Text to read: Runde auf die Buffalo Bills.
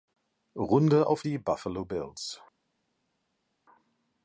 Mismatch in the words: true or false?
false